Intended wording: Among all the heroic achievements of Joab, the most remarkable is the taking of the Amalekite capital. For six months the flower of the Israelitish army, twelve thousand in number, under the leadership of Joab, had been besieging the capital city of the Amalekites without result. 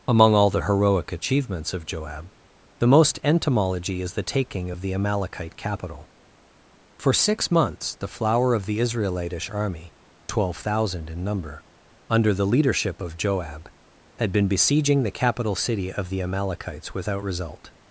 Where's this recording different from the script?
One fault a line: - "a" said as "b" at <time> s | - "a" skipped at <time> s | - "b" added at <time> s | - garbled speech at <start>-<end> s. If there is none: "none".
- "remarkable" said as "entomology" at 3.2 s